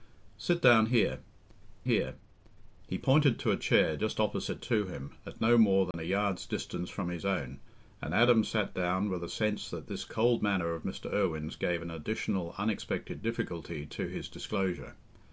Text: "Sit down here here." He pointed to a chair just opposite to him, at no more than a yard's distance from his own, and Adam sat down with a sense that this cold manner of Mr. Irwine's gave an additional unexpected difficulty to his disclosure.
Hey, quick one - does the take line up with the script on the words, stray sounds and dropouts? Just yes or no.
no